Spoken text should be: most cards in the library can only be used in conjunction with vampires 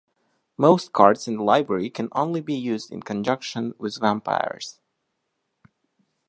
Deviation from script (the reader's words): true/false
false